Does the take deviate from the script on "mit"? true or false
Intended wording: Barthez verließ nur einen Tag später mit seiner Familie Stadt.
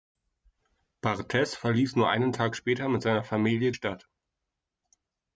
false